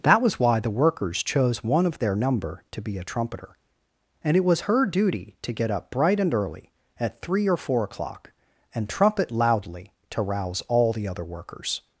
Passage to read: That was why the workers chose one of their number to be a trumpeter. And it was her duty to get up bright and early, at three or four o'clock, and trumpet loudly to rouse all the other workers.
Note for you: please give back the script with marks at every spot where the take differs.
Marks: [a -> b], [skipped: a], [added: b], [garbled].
That was why the workers chose one of their number to be a trumpeter. And it was her duty to get up bright and early, at three or four o'clock, and trumpet loudly to rouse all the other workers.